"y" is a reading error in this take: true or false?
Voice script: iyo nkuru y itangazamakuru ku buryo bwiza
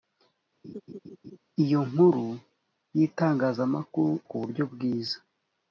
false